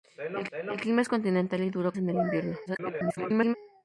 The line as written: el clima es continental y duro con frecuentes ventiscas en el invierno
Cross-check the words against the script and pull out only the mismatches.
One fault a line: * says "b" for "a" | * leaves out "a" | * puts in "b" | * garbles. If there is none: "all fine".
* puts in "el"
* leaves out "con frecuentes ventiscas"
* garbles